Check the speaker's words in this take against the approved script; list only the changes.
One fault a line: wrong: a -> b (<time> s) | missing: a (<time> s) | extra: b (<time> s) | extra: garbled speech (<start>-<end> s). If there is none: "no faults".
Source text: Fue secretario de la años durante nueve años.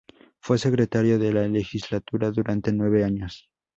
wrong: años -> legislatura (1.5 s)